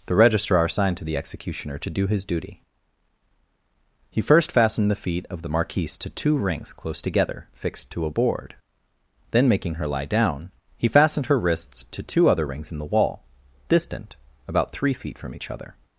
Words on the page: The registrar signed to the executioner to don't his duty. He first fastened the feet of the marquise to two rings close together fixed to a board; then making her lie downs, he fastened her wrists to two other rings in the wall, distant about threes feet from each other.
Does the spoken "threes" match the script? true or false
false